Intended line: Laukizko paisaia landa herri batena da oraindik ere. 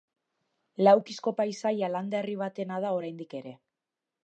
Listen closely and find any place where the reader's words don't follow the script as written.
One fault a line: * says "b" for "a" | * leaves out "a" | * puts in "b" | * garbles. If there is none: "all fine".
all fine